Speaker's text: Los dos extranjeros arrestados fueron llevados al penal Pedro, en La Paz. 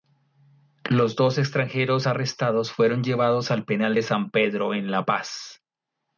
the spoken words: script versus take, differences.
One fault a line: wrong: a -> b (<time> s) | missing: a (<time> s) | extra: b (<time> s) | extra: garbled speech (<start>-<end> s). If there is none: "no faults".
extra: de San (3.9 s)